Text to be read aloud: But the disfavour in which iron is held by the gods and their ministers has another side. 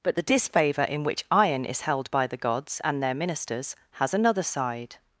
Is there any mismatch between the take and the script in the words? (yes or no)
no